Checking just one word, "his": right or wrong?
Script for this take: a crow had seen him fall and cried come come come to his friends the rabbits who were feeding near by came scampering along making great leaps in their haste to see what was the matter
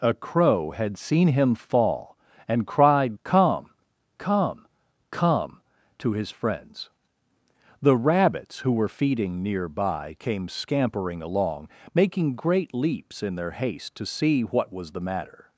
right